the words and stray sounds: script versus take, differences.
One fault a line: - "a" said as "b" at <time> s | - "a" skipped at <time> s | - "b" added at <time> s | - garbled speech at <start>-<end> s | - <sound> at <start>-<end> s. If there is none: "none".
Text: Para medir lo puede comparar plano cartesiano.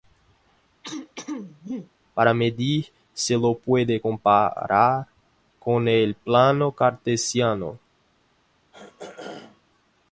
- throat clearing at 0.8-1.9 s
- "se" added at 3.1 s
- "con el" added at 5.6 s
- throat clearing at 8.7-9.6 s